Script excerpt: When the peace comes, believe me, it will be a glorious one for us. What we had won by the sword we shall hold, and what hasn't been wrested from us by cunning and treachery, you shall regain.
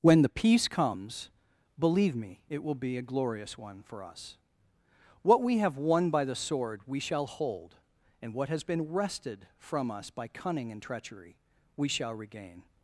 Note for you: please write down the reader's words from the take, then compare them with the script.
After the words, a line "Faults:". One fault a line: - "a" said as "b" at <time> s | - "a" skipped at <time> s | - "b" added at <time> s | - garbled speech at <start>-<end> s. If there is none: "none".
When the peace comes, believe me, it will be a glorious one for us. What we have won by the sword we shall hold, and what has been wrested from us by cunning and treachery, we shall regain.
Faults:
- "had" said as "have" at 5.6 s
- "hasn't" said as "has" at 8.5 s
- "you" said as "we" at 11.8 s